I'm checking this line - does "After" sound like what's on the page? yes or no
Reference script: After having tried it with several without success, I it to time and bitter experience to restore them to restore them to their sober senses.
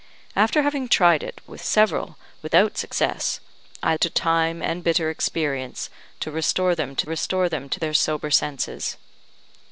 yes